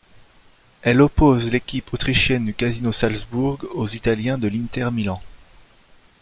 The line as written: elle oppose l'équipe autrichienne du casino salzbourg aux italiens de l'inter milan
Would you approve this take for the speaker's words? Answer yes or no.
yes